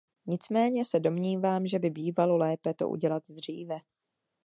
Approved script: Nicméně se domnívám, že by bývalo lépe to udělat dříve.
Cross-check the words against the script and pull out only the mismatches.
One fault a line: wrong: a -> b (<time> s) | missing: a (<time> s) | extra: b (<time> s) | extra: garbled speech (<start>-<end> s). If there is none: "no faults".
no faults